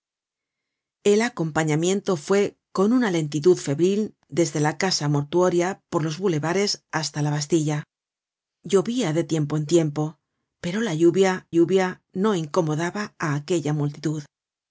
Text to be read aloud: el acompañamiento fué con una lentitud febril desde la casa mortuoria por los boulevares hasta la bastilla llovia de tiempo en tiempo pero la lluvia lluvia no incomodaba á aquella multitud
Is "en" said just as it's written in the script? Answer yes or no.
yes